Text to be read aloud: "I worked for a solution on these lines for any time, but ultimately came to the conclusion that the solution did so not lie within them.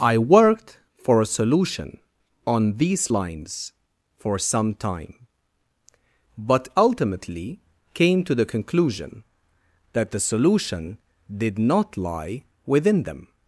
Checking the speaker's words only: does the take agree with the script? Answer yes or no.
no